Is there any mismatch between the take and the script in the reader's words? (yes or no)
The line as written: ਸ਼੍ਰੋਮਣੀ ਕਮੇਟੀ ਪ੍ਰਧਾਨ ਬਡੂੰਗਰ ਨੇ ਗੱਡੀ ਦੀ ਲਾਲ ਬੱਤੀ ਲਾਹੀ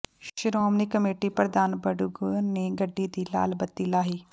no